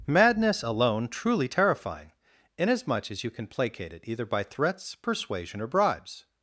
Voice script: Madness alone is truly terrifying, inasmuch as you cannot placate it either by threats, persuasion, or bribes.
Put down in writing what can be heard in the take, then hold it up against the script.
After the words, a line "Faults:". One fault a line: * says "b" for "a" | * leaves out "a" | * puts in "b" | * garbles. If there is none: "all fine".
Madness alone truly terrifying, inasmuch as you can placate it either by threats, persuasion, or bribes.
Faults:
* leaves out "is"
* says "can" for "cannot"